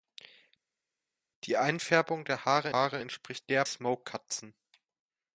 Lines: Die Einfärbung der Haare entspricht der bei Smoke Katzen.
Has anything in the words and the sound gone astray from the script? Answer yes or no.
yes